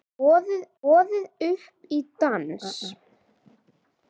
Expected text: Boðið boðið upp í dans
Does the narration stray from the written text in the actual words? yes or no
no